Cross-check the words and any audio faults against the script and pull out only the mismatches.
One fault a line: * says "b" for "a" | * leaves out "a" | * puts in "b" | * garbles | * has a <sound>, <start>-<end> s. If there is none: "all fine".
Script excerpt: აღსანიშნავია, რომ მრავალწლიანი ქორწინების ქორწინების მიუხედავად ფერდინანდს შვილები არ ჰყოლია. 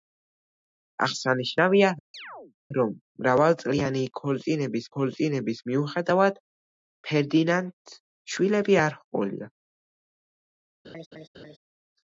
* has a chirp, 2.1-2.5 s
* has a laugh, 10.8-11.6 s